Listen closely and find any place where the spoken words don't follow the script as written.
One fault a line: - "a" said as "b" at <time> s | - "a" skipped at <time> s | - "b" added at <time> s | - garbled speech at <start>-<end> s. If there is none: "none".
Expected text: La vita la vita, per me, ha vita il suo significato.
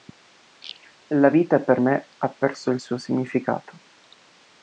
- "la vita" skipped at 1.6 s
- "vita" said as "perso" at 2.3 s